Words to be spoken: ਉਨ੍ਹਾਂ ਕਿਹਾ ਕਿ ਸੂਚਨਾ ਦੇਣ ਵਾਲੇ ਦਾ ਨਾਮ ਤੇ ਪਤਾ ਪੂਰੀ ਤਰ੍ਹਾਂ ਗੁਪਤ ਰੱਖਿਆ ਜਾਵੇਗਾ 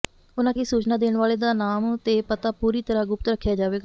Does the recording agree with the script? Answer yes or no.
no